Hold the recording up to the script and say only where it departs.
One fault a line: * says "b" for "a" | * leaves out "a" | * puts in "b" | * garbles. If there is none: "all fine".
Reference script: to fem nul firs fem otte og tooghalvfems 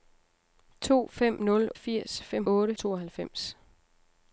all fine